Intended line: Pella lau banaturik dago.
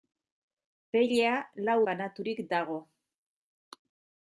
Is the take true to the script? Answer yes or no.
yes